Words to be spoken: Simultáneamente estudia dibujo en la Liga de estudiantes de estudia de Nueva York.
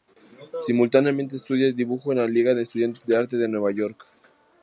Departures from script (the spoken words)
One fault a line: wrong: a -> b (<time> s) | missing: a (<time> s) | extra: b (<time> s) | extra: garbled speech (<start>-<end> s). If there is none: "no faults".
wrong: estudia -> arte (3.1 s)